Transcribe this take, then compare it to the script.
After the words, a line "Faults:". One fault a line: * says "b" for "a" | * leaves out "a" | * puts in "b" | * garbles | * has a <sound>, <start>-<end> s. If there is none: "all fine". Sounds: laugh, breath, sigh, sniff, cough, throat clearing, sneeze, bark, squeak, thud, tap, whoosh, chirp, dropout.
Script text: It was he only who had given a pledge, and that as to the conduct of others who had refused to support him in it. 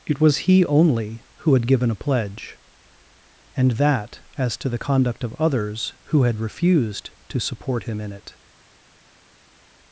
It was he only who had given a pledge, and that as to the conduct of others who had refused to support him in it.
Faults:
all fine